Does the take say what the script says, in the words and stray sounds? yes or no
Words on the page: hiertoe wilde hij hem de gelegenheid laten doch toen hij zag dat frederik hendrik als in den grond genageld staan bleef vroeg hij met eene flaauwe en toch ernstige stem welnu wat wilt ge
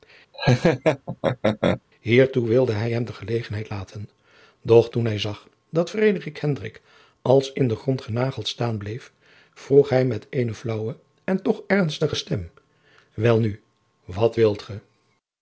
no